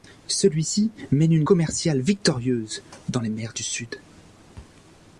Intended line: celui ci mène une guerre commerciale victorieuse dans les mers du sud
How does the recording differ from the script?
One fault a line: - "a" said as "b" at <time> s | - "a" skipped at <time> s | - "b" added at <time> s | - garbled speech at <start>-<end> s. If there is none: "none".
- "guerre" skipped at 1.4 s